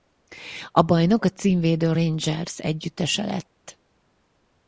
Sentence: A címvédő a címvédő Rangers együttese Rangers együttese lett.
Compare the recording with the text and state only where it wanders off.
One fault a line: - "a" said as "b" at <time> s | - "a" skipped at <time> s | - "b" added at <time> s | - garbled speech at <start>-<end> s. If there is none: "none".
- "címvédő" said as "bajnok" at 0.8 s
- "Rangers együttese" skipped at 3.2 s